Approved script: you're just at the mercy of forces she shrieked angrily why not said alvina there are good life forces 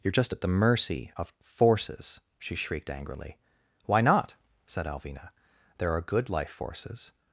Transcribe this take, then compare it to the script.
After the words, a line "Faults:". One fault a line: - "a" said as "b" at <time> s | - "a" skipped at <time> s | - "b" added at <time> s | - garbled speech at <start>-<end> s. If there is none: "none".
you're just at the mercy of forces she shrieked angrily why not said alvina there are good life forces
Faults:
none